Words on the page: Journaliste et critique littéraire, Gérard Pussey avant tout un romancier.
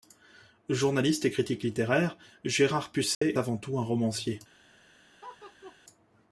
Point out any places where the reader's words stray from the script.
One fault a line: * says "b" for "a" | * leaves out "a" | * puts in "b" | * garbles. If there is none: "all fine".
all fine